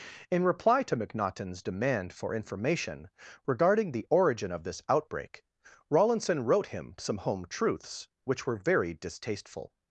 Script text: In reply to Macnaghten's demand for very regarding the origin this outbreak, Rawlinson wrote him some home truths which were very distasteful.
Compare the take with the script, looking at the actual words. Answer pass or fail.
fail